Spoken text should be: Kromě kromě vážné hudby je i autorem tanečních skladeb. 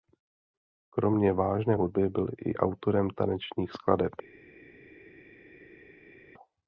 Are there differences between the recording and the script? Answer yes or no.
yes